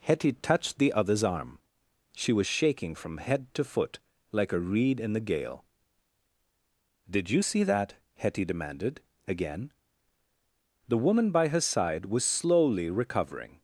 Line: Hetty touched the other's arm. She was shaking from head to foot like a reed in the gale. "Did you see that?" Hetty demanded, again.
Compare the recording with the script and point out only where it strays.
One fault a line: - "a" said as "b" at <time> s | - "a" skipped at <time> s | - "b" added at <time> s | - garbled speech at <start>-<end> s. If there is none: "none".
- "The woman by her side was slowly recovering" added at 10.9 s